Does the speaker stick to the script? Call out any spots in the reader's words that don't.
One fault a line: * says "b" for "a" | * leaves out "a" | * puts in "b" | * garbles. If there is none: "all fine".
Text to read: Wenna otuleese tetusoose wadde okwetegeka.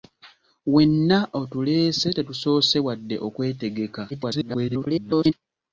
* garbles